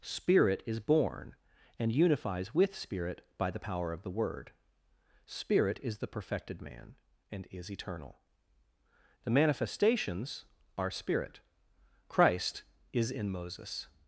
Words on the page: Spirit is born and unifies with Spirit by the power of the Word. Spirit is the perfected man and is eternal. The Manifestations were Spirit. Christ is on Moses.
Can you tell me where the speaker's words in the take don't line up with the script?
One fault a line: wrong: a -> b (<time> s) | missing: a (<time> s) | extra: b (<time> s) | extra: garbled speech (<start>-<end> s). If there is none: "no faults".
wrong: were -> are (10.8 s)
wrong: on -> in (13.1 s)